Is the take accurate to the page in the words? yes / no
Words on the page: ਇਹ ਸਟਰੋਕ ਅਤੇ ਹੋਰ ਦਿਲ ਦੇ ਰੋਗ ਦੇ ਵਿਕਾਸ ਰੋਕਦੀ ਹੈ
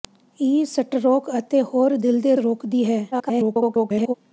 no